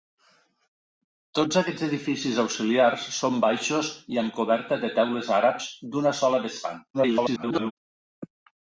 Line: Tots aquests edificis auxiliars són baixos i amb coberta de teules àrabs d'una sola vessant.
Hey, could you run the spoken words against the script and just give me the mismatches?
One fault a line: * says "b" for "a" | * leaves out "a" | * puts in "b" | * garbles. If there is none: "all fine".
* garbles